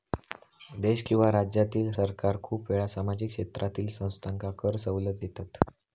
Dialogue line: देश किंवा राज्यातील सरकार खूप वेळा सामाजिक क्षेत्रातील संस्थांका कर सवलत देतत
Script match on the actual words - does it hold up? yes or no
yes